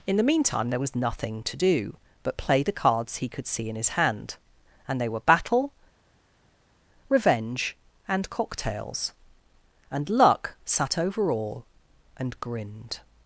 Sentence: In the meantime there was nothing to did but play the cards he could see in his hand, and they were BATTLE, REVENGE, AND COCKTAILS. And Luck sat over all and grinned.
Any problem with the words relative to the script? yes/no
yes